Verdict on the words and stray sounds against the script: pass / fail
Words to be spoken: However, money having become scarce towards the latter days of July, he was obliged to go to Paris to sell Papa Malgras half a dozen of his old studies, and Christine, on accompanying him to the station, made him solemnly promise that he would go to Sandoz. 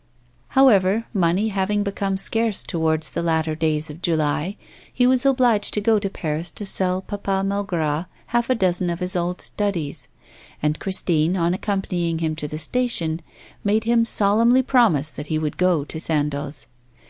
pass